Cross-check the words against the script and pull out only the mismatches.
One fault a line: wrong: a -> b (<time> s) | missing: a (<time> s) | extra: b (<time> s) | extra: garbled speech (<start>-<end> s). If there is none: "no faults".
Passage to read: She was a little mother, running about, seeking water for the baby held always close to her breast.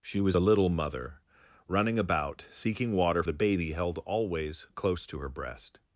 missing: for (3.2 s)